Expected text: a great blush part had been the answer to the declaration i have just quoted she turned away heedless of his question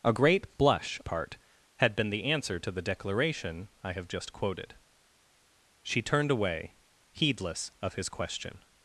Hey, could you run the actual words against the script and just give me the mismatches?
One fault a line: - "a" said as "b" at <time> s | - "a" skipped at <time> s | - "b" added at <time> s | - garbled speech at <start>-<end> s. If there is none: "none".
none